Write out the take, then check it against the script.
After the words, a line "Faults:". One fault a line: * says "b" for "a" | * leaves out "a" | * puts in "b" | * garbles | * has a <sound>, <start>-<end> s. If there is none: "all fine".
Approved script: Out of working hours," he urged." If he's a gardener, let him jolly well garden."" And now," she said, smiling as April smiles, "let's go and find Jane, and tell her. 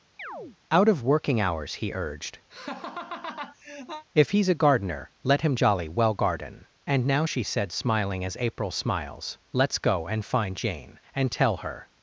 Out of working hours," he urged." If he's a gardener, let him jolly well garden."" And now," she said, smiling as April smiles, "let's go and find Jane, and tell her.
Faults:
* has a chirp, 0.2-0.6 s
* has a laugh, 2.5-4.0 s